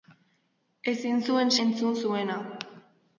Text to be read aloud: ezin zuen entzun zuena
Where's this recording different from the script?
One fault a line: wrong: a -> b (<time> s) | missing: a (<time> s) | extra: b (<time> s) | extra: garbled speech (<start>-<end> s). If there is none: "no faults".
no faults